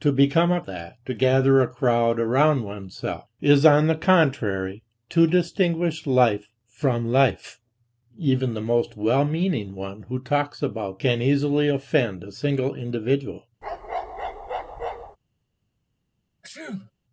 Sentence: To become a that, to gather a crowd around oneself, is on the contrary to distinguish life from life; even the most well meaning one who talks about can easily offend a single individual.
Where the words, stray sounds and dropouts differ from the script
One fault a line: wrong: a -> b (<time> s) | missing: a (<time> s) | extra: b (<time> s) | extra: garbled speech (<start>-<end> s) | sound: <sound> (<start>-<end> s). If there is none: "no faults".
sound: bark (13.6-15.2 s)
sound: sneeze (16.4-16.9 s)